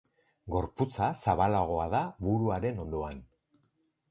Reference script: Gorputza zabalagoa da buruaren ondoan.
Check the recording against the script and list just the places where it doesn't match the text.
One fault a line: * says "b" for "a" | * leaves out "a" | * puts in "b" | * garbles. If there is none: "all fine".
all fine